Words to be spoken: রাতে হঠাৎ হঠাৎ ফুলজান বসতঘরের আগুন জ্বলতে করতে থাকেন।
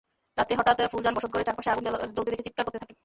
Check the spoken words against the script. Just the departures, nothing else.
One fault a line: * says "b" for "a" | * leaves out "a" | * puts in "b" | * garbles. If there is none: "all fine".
* leaves out "হঠাৎ"
* puts in "চারপাশে"
* puts in "দেখে চিৎকার"